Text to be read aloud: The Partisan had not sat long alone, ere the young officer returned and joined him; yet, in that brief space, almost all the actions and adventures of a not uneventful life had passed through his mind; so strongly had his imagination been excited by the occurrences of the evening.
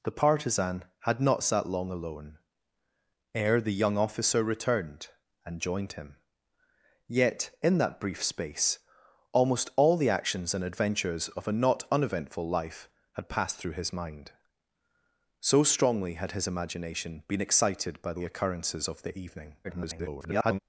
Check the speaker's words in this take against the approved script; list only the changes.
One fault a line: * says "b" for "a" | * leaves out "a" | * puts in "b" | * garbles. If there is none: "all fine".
* garbles